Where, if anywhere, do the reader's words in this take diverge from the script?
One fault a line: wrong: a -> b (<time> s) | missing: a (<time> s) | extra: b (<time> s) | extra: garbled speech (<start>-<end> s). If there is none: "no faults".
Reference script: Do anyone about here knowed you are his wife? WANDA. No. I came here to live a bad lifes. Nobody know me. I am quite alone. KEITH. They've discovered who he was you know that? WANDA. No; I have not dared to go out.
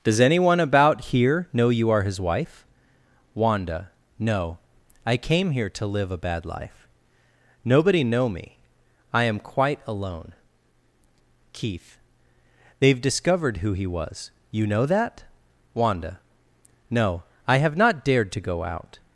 wrong: Do -> Does (0.0 s)
wrong: knowed -> know (1.5 s)
wrong: lifes -> life (6.4 s)